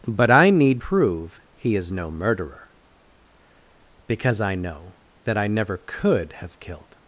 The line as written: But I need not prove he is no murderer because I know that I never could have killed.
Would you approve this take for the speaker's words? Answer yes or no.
no